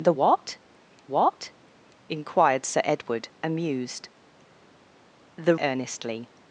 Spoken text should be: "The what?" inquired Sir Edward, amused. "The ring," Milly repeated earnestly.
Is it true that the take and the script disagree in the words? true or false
true